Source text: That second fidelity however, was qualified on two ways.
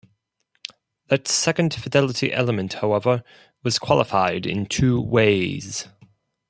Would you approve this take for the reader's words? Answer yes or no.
no